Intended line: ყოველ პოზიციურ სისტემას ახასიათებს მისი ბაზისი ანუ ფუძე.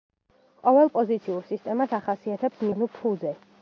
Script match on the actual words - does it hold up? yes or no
no